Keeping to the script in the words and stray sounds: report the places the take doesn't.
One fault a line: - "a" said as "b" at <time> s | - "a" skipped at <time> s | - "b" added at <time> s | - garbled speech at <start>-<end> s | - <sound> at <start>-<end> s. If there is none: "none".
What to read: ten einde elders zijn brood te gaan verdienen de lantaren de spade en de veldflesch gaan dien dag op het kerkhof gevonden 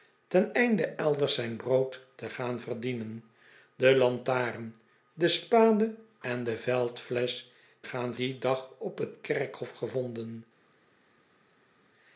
none